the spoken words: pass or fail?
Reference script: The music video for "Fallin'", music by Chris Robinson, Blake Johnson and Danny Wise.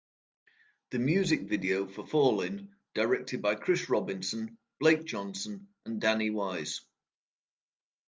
fail